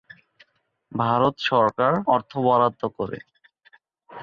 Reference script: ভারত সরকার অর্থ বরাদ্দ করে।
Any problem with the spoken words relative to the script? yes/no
no